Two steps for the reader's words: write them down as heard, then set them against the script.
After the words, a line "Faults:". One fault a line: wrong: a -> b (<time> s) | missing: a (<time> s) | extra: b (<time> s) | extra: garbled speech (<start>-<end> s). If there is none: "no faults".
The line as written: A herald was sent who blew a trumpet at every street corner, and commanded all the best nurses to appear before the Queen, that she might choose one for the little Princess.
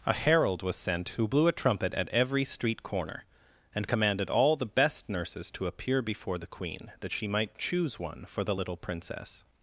A herald was sent who blew a trumpet at every street corner, and commanded all the best nurses to appear before the Queen, that she might choose one for the little Princess.
Faults:
no faults